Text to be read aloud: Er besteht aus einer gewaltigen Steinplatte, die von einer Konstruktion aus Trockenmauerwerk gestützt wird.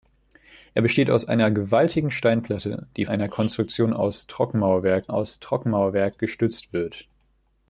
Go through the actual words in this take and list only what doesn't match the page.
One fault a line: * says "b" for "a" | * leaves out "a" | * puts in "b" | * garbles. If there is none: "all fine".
* leaves out "von"
* puts in "aus Trockenmauerwerk"